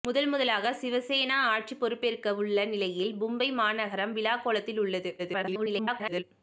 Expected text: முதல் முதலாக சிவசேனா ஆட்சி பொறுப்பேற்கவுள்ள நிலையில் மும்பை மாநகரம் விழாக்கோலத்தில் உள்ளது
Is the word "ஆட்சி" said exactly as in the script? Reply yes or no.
yes